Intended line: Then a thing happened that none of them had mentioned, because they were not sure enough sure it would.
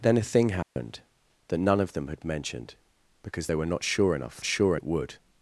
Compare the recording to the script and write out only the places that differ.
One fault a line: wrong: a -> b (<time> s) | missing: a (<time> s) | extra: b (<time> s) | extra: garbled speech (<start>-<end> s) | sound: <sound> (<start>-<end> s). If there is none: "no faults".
sound: dropout (0.6-0.8 s)